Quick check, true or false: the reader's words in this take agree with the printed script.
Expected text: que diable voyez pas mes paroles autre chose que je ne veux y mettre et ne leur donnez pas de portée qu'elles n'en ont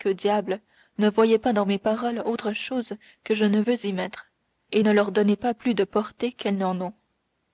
false